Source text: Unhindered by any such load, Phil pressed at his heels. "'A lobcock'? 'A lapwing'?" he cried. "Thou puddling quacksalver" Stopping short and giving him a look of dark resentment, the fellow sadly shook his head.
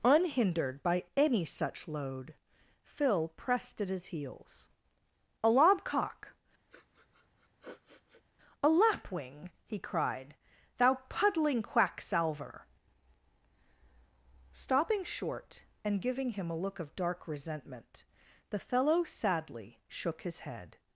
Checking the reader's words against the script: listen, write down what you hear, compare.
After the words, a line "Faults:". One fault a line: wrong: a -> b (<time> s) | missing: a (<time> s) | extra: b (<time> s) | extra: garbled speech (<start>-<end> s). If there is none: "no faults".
Unhindered by any such load, Phil pressed at his heels. "'A lobcock'? 'A lapwing'?" he cried. "Thou puddling quacksalver" Stopping short and giving him a look of dark resentment, the fellow sadly shook his head.
Faults:
no faults